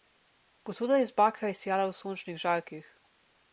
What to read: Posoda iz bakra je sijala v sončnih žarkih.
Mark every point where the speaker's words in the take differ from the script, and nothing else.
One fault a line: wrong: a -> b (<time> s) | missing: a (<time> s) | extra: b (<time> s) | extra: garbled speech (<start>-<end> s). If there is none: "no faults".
no faults